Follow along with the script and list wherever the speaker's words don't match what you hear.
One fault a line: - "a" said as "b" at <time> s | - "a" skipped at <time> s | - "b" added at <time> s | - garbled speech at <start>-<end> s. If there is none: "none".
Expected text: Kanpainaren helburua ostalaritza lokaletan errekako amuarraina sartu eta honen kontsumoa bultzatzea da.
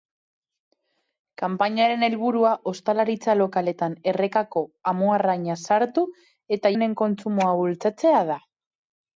none